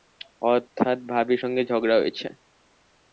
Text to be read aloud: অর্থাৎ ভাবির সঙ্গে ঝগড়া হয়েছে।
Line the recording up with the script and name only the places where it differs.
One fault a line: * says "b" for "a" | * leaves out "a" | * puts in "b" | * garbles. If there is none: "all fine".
all fine